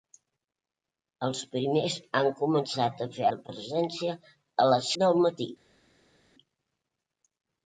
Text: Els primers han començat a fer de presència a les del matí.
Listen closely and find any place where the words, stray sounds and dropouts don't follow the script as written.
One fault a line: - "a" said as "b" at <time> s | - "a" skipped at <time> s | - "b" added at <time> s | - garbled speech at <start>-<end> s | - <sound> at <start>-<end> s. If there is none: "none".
none